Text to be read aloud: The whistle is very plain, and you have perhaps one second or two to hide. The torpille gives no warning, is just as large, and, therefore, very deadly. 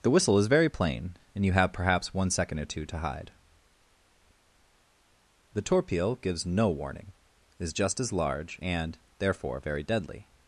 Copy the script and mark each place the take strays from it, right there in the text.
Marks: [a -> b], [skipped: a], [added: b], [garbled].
The whistle is very plain, and you have perhaps one second or two to hide. The torpille gives no warning, is just as large, and, therefore, very deadly.